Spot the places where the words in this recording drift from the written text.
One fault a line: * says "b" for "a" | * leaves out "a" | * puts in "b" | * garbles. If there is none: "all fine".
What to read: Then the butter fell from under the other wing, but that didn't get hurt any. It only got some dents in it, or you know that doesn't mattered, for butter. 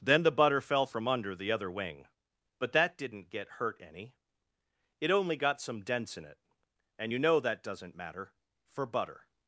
* says "and" for "or"
* says "matter" for "mattered"